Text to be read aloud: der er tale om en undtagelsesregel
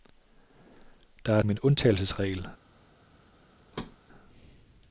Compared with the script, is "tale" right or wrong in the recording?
wrong